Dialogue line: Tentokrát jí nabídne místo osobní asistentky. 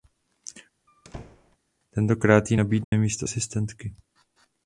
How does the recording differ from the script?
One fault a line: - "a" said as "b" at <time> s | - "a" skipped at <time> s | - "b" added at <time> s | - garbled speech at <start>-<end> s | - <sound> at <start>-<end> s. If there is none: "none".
- squeak at 0.9-1.6 s
- dropout at 2.8-2.9 s
- "osobní" skipped at 3.3 s